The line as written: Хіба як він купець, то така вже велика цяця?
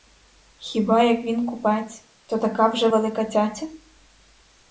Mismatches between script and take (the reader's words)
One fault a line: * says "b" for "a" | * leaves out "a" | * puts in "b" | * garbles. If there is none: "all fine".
all fine